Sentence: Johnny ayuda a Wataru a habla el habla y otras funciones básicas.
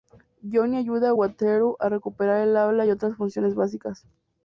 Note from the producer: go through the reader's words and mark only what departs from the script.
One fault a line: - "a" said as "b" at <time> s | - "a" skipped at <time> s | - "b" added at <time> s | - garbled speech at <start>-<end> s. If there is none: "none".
- "habla" said as "recuperar" at 1.9 s